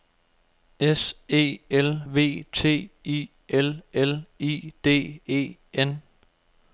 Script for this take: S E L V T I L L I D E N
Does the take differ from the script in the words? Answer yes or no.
no